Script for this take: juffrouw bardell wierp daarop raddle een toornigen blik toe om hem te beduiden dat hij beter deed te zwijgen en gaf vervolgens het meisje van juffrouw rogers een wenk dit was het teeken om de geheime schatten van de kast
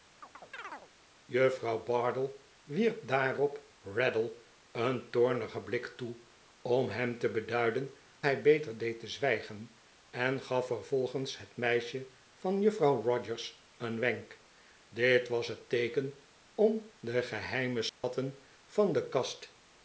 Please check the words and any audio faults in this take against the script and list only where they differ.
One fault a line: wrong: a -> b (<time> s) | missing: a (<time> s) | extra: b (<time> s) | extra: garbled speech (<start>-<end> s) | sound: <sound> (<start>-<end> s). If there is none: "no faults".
sound: chirp (0.2-0.9 s)
missing: dat (7.9 s)
sound: dropout (17.9-18.0 s)